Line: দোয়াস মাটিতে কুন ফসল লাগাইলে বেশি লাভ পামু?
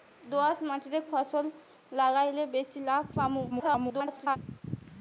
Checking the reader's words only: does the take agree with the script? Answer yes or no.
no